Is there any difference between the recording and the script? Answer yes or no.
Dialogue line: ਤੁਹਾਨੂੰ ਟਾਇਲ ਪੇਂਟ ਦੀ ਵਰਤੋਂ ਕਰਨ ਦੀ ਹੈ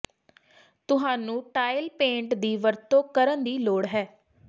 yes